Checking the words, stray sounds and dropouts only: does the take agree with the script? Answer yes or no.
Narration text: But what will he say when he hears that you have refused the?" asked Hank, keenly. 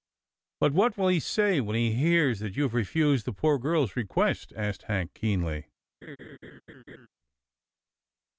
no